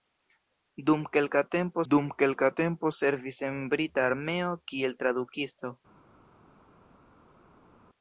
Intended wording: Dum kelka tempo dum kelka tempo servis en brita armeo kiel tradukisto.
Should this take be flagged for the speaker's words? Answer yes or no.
no